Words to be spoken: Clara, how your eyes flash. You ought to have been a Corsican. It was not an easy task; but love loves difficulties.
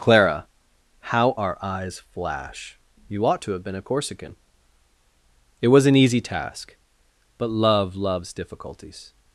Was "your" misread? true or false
true